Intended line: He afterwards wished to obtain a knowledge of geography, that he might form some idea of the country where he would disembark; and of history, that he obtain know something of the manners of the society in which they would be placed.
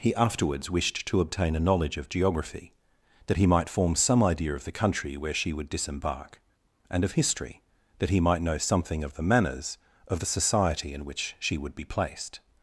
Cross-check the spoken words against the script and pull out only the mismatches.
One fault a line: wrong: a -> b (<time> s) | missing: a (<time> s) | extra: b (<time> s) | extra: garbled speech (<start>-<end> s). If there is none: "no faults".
wrong: he -> she (5.3 s)
wrong: obtain -> might (8.2 s)
wrong: they -> she (11.4 s)